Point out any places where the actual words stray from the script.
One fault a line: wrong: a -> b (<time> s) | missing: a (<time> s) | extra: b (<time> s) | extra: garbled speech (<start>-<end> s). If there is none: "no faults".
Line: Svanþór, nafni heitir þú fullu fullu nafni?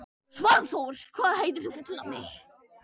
wrong: nafni -> hvað (1.2 s)
missing: fullu (2.0 s)